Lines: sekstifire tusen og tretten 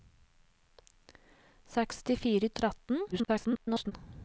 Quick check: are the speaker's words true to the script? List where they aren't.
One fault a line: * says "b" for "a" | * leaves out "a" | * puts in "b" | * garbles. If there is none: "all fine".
* leaves out "tusen"
* garbles